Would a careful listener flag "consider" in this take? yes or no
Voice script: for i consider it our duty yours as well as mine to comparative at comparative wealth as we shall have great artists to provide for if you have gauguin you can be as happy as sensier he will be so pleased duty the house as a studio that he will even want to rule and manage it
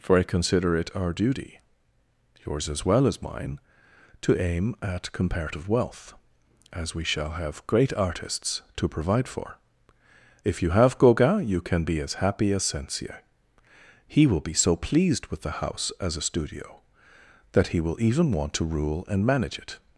no